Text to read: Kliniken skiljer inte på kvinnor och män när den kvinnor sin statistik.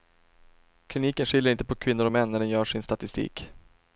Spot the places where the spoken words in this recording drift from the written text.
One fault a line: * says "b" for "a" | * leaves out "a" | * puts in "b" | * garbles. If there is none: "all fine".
* says "gör" for "kvinnor"